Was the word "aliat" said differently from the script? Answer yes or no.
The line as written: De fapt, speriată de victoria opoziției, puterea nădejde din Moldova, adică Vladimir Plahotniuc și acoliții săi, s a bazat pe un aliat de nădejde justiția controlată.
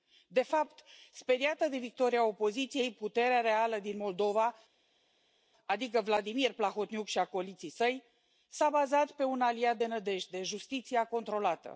no